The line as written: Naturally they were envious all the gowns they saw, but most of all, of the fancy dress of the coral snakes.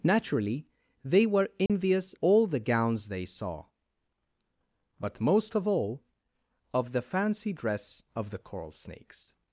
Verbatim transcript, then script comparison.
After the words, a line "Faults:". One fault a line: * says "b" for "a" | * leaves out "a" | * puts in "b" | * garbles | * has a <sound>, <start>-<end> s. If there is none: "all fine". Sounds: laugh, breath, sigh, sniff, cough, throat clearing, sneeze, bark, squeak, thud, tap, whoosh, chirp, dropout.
Naturally they were envious all the gowns they saw, but most of all, of the fancy dress of the coral snakes.
Faults:
* has a dropout, 1.7-1.7 s